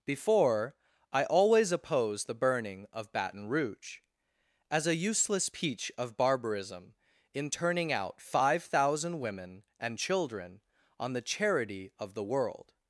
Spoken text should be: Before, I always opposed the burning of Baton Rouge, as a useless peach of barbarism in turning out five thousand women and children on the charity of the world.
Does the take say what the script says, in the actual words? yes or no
yes